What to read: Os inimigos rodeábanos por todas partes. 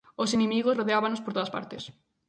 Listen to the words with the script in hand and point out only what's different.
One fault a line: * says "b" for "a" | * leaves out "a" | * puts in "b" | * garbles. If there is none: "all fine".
all fine